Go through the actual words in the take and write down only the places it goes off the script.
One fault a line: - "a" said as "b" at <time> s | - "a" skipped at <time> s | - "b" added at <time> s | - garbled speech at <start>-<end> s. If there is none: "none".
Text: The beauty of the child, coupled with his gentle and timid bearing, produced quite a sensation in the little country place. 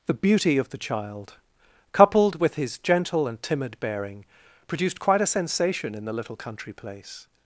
none